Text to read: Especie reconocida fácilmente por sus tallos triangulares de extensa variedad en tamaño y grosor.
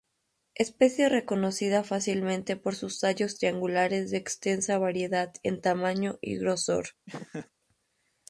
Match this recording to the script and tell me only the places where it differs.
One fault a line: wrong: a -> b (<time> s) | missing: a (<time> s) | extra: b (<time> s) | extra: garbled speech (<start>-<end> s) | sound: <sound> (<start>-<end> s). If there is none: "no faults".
sound: laugh (7.1-7.5 s)